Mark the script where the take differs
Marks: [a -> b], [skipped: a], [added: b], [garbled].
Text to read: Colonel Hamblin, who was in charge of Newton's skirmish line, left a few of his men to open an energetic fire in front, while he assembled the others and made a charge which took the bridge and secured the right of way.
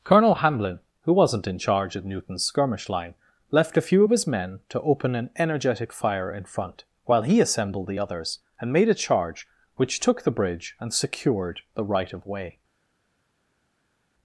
Colonel Hamblin, who [was -> wasn't] in charge of Newton's skirmish line, left a few of his men to open an energetic fire in front, while he assembled the others and made a charge which took the bridge and secured the right of way.